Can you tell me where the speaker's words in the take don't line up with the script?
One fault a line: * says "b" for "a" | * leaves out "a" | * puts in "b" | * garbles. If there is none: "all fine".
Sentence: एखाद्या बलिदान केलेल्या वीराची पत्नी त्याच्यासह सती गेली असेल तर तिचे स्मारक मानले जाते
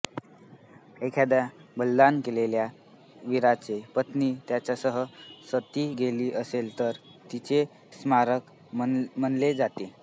all fine